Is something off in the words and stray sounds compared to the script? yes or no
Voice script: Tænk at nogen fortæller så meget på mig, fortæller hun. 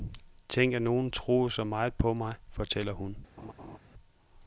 yes